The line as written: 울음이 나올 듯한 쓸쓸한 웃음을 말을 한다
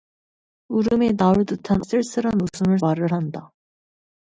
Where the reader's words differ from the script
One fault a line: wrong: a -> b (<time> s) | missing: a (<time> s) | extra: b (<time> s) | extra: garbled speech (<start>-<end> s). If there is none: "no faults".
no faults